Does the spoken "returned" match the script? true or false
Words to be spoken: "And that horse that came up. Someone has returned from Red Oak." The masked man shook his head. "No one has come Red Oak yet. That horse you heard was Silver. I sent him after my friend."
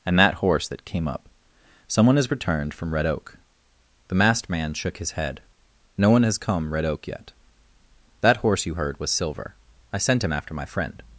true